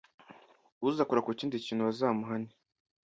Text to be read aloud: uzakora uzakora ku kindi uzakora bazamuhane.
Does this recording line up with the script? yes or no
no